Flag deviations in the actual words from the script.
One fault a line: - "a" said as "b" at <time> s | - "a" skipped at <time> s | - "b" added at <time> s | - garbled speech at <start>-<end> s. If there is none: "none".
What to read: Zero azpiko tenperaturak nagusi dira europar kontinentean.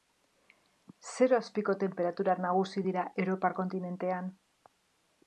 none